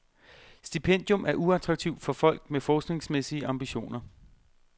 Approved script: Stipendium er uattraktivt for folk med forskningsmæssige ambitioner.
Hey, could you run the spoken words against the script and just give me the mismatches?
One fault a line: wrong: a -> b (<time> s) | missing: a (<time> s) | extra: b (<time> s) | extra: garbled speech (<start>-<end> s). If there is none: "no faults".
no faults